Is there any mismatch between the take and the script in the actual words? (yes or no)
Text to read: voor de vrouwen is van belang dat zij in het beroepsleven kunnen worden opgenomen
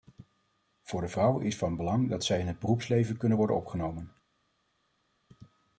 no